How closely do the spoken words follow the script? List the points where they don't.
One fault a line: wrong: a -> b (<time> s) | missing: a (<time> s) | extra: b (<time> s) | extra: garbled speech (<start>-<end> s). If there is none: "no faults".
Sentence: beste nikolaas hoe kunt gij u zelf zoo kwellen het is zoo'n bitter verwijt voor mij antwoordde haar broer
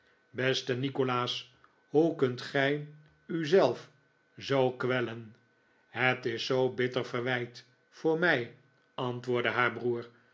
no faults